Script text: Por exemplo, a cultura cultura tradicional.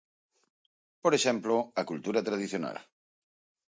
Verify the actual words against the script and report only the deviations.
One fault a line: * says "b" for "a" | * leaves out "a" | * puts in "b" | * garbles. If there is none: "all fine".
* leaves out "cultura"